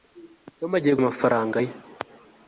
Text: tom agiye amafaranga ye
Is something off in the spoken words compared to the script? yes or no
no